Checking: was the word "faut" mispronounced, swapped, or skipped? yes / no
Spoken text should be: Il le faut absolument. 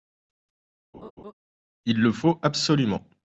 no